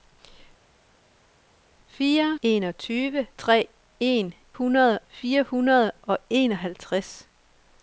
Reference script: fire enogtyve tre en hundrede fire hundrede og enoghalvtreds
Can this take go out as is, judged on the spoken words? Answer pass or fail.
pass